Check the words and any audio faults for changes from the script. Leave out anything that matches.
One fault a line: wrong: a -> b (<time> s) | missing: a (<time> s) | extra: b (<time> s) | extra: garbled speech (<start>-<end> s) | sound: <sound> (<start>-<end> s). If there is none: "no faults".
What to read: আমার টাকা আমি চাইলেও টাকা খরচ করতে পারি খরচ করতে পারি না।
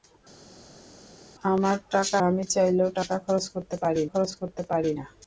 no faults